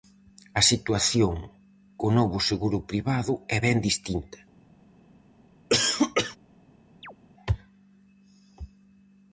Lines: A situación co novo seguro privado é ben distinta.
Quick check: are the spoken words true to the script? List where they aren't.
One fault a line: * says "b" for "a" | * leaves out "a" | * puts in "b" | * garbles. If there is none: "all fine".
all fine